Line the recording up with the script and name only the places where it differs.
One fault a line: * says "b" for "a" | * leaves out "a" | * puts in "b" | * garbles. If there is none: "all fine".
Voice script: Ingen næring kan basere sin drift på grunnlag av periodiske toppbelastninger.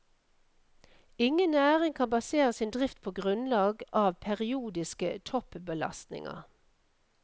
all fine